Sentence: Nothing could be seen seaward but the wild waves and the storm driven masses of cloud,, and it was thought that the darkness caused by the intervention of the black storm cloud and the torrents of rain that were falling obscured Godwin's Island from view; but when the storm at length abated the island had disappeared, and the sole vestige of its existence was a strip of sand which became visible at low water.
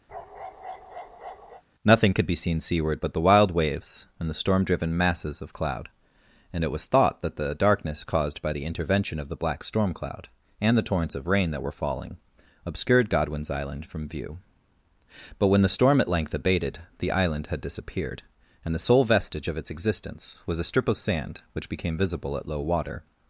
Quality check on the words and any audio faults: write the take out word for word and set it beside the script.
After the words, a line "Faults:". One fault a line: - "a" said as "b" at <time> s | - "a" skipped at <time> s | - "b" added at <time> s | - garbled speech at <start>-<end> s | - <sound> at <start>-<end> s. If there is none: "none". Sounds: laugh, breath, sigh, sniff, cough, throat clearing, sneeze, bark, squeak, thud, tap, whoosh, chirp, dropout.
Nothing could be seen seaward but the wild waves and the storm driven masses of cloud,, and it was thought that the darkness caused by the intervention of the black storm cloud and the torrents of rain that were falling obscured Godwin's Island from view; but when the storm at length abated the island had disappeared, and the sole vestige of its existence was a strip of sand which became visible at low water.
Faults:
- bark at 0.1-1.6 s